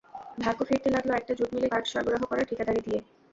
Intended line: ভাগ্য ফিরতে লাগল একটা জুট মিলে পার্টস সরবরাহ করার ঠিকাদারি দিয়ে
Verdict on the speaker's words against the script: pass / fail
pass